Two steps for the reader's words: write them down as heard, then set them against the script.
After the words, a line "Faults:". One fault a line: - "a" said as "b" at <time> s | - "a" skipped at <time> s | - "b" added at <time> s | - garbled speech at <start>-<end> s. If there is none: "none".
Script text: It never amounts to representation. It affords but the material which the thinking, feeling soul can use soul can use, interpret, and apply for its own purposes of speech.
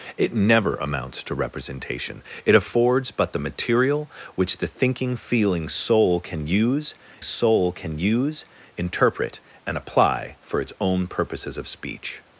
It never amounts to representation. It affords but the material which the thinking, feeling soul can use soul can use, interpret, and apply for its own purposes of speech.
Faults:
none